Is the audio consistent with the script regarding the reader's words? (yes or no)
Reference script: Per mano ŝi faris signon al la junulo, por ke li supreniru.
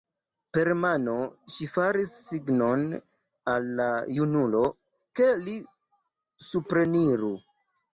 no